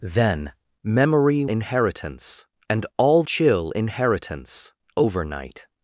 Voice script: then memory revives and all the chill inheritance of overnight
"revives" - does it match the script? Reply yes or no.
no